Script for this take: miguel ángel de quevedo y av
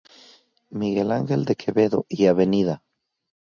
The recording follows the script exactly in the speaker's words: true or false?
true